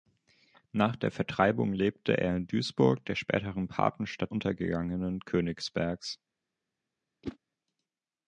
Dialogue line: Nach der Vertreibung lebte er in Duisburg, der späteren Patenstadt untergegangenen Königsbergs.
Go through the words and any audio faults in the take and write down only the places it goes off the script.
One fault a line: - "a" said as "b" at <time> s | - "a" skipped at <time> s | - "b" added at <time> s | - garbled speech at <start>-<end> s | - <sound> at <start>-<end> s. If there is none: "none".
- whoosh at 7.2-7.4 s